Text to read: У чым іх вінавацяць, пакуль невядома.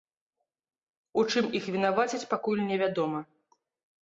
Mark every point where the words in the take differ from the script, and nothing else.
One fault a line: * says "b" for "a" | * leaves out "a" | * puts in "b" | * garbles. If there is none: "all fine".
all fine